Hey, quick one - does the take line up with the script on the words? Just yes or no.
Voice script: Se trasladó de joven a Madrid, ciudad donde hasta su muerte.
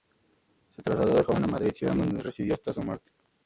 no